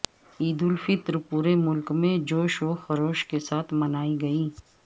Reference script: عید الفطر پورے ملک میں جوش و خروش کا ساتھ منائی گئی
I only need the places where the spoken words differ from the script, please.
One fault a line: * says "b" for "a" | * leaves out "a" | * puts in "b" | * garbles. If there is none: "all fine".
* says "کے" for "کا"